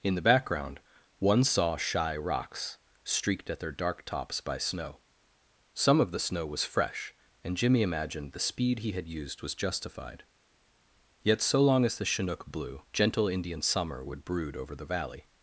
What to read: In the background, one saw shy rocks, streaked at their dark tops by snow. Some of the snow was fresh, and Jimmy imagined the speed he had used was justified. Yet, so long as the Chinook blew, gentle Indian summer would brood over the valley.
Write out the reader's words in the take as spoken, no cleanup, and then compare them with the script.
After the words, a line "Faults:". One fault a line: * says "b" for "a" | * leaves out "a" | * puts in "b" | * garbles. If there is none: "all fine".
In the background, one saw shy rocks, streaked at their dark tops by snow. Some of the snow was fresh, and Jimmy imagined the speed he had used was justified. Yet, so long as the Chinook blew, gentle Indian summer would brood over the valley.
Faults:
all fine